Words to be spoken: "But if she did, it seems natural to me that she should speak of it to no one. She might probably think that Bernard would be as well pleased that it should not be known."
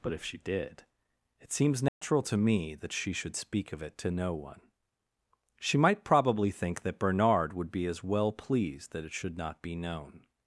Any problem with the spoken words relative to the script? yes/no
no